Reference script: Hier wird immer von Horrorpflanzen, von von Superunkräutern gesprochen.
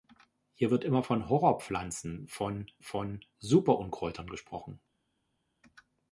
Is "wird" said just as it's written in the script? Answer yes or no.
yes